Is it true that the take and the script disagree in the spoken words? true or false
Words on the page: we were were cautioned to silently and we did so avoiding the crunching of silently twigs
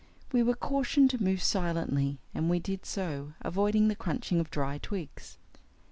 true